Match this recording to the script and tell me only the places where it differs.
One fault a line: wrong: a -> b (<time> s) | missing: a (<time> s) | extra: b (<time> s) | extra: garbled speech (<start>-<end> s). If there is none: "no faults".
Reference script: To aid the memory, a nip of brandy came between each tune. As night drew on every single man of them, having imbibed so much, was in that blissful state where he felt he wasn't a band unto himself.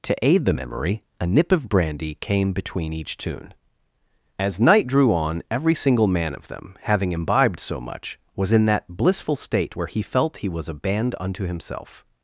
wrong: wasn't -> was (10.5 s)